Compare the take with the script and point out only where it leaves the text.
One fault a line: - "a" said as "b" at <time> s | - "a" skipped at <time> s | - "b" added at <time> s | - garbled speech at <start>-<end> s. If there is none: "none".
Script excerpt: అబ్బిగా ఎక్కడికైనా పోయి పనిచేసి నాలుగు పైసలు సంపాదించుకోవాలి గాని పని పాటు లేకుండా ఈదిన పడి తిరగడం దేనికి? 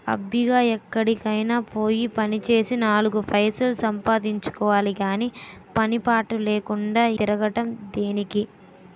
- "ఈదిన పడి" skipped at 7.0 s